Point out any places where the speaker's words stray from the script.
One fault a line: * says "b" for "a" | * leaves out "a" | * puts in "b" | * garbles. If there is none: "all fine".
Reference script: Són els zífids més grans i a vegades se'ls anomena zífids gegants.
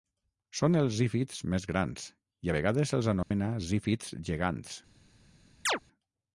all fine